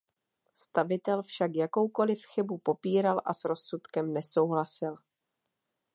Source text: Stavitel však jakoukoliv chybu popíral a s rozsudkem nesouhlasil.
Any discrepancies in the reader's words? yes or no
no